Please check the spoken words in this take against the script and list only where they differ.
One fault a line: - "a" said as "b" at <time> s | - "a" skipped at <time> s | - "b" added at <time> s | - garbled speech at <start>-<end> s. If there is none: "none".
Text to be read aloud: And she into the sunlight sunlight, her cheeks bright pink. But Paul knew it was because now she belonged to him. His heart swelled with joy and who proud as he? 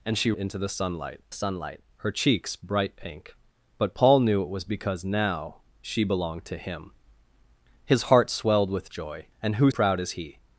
none